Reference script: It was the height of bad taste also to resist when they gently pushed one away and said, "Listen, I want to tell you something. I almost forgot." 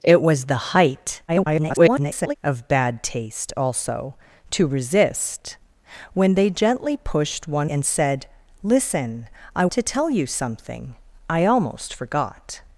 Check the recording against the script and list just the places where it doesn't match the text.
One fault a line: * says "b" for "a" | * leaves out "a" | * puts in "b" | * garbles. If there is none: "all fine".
* garbles
* leaves out "away"
* leaves out "want"